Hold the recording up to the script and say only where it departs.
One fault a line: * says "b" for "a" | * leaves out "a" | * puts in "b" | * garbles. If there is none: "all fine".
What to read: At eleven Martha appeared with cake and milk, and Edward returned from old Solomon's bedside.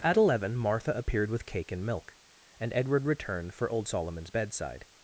* says "for" for "from"